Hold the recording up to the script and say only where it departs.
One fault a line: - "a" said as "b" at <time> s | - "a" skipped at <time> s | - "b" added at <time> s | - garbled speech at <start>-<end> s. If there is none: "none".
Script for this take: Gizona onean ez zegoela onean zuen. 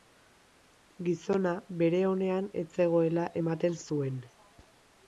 - "bere" added at 1.8 s
- "onean" said as "ematen" at 3.4 s